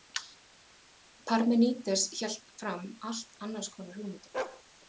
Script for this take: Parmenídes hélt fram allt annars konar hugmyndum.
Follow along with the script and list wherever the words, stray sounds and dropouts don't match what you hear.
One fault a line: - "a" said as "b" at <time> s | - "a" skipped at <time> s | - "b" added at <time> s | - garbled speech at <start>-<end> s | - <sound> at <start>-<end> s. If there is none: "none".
- bark at 4.3-4.6 s